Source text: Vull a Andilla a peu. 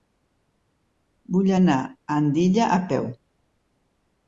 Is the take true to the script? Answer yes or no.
no